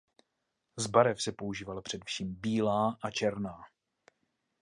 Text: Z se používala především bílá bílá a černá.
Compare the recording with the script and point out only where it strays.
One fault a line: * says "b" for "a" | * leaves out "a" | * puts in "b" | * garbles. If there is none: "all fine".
* puts in "barev"
* leaves out "bílá"